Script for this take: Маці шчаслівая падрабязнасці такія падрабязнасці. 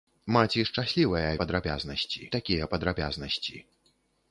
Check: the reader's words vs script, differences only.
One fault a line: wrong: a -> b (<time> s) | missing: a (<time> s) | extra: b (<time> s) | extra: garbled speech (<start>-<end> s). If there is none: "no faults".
no faults